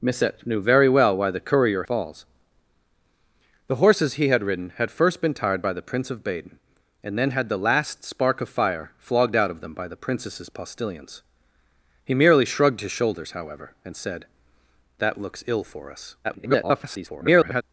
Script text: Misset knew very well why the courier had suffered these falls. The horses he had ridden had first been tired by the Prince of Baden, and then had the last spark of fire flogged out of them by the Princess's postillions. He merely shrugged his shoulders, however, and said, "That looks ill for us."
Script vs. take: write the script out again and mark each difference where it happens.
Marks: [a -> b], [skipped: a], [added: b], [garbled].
Misset knew very well why the courier [skipped: had suffered these] falls. The horses he had ridden had first been tired by the Prince of Baden, and then had the last spark of fire flogged out of them by the Princess's postillions. He merely shrugged his shoulders, however, and said, "That looks ill for us." [garbled]